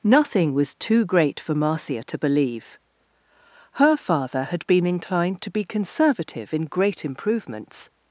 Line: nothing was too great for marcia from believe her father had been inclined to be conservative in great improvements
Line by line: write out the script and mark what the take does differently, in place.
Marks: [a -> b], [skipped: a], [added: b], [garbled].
nothing was too great for marcia [from -> to] believe her father had been inclined to be conservative in great improvements